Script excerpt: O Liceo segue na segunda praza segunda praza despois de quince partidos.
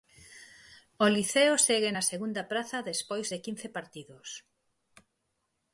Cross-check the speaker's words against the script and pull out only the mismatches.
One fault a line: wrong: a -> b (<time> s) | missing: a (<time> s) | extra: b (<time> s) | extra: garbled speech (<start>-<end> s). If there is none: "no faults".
missing: segunda praza (2.8 s)